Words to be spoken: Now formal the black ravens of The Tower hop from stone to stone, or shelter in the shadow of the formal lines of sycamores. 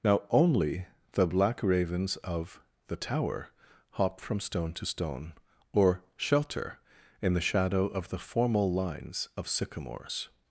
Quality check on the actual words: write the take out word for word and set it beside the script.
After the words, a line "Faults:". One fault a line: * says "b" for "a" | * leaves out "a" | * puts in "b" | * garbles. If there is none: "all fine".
Now only the black ravens of The Tower hop from stone to stone, or shelter in the shadow of the formal lines of sycamores.
Faults:
* says "only" for "formal"